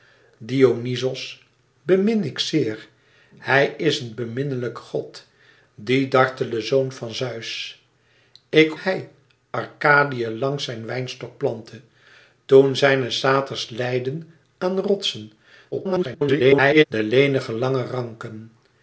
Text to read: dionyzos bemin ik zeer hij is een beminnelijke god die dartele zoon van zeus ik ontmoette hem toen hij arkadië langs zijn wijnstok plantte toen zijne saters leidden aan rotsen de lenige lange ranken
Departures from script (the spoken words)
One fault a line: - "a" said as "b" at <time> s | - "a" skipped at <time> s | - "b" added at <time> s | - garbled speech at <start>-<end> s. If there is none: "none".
- "ontmoette hem toen" skipped at 8.8 s
- garbled speech at 15.7-16.9 s